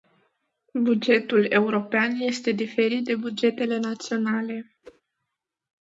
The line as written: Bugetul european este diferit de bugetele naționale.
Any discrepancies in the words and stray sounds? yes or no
yes